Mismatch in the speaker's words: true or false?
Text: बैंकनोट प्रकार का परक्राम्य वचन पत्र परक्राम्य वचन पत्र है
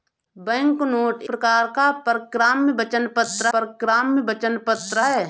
false